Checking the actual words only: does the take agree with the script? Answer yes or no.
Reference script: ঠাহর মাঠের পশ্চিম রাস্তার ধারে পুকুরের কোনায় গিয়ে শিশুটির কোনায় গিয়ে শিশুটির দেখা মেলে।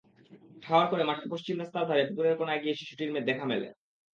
no